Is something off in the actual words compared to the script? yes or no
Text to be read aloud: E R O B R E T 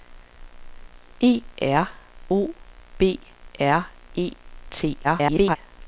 yes